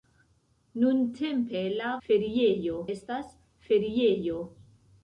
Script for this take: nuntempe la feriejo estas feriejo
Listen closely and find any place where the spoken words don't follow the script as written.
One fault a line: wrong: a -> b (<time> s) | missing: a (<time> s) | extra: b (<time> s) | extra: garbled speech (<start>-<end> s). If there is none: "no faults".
no faults